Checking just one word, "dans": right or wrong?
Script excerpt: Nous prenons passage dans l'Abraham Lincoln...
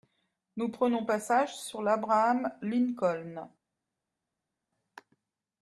wrong